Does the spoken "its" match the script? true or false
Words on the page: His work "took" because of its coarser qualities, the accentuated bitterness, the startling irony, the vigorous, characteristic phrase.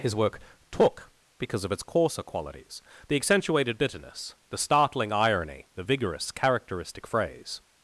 true